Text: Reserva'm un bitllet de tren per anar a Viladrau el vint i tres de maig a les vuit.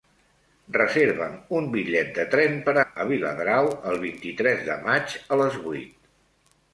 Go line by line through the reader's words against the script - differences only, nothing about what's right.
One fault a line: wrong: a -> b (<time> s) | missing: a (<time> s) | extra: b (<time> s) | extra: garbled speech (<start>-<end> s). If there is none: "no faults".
missing: anar (2.8 s)